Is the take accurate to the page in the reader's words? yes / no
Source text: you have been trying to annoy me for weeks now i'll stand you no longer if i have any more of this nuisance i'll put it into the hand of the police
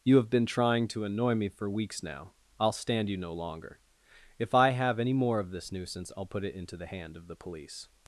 yes